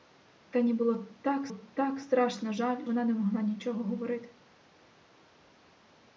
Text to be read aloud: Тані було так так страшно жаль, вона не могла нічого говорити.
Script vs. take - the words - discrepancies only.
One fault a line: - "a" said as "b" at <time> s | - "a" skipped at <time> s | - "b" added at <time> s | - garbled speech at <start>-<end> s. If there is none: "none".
none